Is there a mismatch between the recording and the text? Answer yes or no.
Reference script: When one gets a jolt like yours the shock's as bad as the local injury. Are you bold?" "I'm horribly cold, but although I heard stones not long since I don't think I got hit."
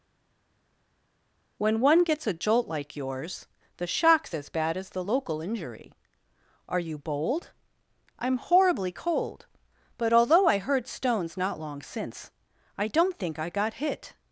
no